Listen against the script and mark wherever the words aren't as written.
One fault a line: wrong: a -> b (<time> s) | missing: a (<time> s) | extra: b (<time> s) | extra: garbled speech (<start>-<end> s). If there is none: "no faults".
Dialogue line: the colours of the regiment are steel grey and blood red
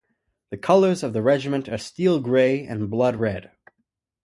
no faults